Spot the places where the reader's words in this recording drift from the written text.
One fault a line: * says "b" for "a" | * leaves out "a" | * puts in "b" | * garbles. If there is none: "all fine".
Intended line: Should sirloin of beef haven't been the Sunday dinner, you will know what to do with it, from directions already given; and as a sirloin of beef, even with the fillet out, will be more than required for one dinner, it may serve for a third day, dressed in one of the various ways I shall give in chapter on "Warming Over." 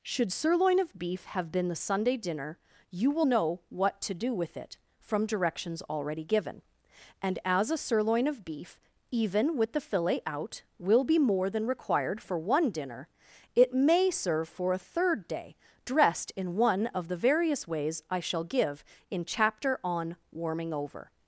* says "have" for "haven't"